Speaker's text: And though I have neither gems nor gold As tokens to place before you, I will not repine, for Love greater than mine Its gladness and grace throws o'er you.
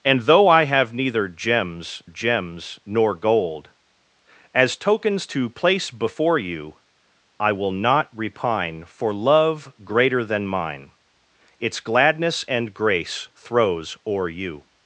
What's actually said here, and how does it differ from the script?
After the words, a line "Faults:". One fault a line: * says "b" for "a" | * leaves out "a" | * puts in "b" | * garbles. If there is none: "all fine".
And though I have neither gems gems nor gold As tokens to place before you, I will not repine, for Love greater than mine Its gladness and grace throws o'er you.
Faults:
* puts in "gems"